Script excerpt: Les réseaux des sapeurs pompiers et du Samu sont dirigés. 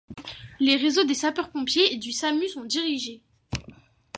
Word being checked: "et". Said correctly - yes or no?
yes